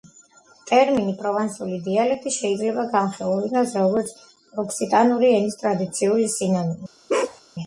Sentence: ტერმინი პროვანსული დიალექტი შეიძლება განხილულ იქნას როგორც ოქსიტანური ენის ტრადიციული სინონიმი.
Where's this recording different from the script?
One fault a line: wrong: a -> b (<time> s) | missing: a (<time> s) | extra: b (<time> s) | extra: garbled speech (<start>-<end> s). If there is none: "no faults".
no faults